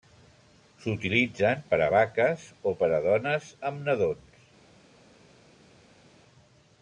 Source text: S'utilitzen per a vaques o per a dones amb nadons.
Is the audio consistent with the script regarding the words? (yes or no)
yes